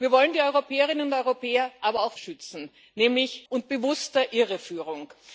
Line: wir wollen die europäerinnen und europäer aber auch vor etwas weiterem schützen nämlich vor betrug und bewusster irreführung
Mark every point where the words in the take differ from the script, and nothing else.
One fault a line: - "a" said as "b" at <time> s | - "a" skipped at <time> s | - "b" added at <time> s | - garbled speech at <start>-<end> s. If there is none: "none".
- "vor etwas weiterem" skipped at 2.1 s
- "vor betrug" skipped at 3.5 s